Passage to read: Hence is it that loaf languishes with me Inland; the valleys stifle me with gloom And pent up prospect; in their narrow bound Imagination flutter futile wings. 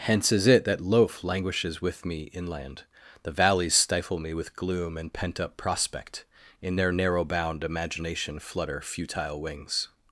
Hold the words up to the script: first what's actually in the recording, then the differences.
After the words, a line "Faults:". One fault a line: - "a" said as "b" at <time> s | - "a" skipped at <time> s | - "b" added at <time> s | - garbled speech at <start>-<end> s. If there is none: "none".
Hence is it that loaf languishes with me Inland; the valleys stifle me with gloom And pent up prospect; in their narrow bound Imagination flutter futile wings.
Faults:
none